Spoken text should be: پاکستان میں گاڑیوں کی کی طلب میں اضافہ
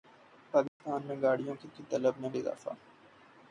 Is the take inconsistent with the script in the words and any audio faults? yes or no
yes